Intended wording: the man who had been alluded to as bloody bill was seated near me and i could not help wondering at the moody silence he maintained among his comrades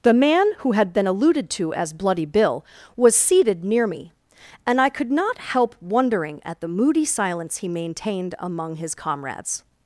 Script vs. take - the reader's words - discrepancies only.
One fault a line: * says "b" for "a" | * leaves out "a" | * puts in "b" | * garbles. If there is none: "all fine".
all fine